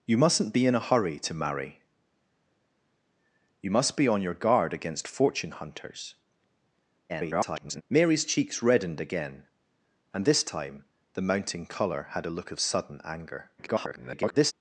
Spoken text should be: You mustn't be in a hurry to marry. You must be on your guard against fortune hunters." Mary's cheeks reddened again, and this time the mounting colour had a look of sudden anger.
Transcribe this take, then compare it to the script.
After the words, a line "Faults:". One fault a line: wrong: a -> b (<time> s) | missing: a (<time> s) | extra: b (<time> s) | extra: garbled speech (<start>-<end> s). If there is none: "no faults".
You mustn't be in a hurry to marry. You must be on your guard against fortune hunters." [garbled] Mary's cheeks reddened again, and this time the mounting colour had a look of sudden anger. [garbled]
Faults:
extra: garbled speech (7.1-7.8 s)
extra: garbled speech (13.6-14.5 s)